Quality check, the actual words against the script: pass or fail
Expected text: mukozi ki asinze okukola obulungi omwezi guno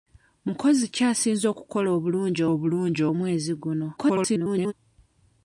fail